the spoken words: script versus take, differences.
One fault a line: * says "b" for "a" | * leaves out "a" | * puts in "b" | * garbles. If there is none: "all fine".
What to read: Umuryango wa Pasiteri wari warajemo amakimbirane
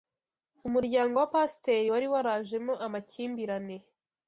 all fine